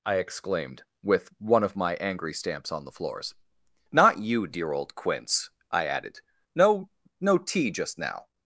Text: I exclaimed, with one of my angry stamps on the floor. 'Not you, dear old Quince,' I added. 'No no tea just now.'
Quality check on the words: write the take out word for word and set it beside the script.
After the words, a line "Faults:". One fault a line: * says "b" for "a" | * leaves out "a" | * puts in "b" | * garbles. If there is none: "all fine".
I exclaimed, with one of my angry stamps on the floors. 'Not you, dear old Quince,' I added. 'No no tea just now.'
Faults:
* says "floors" for "floor"